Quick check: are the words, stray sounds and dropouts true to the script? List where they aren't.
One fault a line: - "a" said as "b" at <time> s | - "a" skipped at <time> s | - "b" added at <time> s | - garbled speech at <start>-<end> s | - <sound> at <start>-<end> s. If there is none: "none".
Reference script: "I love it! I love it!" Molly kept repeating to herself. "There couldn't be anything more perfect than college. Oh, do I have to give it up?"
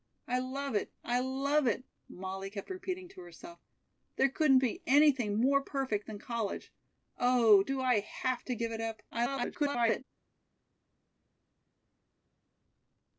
- garbled speech at 9.1-10.0 s